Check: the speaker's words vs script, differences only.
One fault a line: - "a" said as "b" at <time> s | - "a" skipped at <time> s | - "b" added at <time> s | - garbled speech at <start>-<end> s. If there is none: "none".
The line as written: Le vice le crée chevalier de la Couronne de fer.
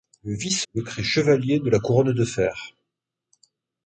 none